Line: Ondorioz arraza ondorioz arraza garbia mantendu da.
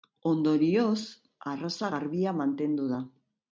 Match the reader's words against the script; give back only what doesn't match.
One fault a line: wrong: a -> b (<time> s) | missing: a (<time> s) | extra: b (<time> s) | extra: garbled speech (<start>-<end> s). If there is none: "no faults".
missing: ondorioz arraza (1.9 s)